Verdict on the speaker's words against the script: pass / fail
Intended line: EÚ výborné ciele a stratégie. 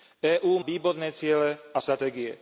pass